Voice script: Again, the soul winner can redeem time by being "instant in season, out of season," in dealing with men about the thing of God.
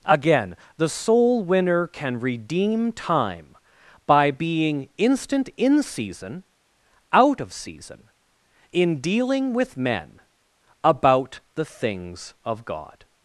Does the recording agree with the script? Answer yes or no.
no